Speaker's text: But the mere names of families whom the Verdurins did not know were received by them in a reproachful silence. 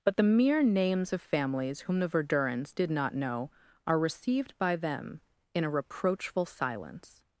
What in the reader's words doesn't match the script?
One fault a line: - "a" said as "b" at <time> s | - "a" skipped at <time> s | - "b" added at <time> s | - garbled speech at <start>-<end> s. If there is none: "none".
- "were" said as "are" at 3.9 s